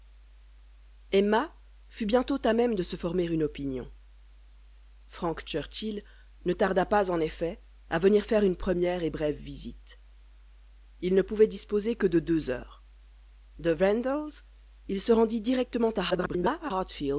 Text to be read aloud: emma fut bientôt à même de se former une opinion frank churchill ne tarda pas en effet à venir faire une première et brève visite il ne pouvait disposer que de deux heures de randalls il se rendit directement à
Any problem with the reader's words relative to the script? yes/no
yes